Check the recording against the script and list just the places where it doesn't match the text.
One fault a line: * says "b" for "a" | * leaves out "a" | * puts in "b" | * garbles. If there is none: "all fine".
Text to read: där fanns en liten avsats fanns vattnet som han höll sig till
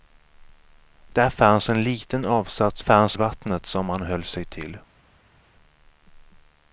all fine